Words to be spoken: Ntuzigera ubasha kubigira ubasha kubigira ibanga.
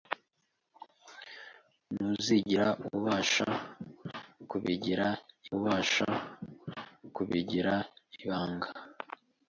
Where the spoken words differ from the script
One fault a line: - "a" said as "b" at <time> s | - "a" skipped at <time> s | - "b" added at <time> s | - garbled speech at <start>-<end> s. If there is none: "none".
none